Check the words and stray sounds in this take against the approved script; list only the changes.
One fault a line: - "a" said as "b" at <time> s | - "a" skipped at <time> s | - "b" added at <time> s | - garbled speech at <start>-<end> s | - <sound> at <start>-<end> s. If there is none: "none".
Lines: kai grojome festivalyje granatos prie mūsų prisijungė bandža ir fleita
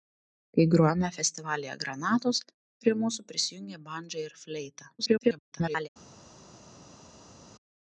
- garbled speech at 5.0-5.9 s